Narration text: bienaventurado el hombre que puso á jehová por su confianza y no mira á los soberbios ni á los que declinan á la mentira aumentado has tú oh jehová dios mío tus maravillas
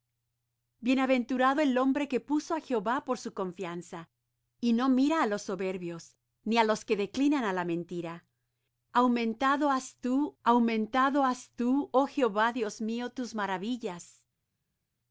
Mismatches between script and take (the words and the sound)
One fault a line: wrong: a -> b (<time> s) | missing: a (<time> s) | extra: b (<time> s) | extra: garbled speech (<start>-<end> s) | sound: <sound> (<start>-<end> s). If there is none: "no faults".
extra: aumentado has tú (10.4 s)